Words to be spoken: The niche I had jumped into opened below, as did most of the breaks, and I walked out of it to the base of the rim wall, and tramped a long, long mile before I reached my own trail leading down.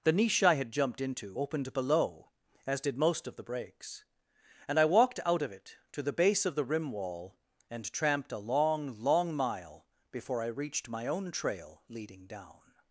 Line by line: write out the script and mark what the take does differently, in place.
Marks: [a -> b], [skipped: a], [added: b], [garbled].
The niche I had jumped into opened below, as did most of the breaks, and I walked out of it to the base of the rim wall, and tramped a long, long mile before I reached my own trail leading down.